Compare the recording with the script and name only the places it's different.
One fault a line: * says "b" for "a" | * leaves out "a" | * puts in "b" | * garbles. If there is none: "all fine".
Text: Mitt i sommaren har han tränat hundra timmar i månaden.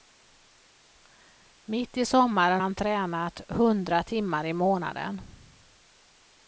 * leaves out "har"